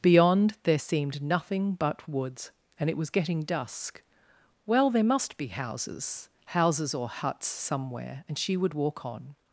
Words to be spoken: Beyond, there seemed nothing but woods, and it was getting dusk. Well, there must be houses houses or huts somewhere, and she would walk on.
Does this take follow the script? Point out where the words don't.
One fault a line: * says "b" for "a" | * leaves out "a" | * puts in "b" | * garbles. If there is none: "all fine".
all fine